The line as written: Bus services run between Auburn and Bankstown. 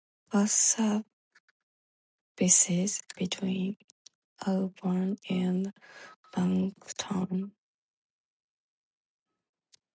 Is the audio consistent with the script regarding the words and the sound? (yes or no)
no